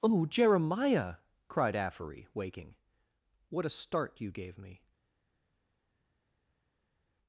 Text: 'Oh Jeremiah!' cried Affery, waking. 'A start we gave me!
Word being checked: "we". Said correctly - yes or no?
no